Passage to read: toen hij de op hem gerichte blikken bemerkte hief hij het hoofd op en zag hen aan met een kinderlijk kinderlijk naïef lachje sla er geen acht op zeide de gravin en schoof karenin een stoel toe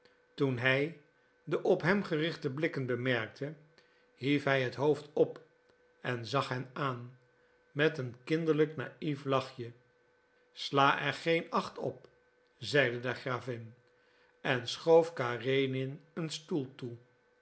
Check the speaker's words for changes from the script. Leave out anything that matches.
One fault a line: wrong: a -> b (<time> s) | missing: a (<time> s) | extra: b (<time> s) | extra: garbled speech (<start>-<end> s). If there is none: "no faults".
missing: kinderlijk (8.8 s)